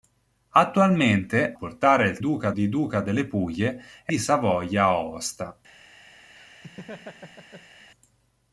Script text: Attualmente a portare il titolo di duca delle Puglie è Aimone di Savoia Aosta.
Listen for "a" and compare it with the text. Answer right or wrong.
wrong